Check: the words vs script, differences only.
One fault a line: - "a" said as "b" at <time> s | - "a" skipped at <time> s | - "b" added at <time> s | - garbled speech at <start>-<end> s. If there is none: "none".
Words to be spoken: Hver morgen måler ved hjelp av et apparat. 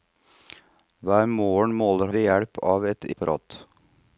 none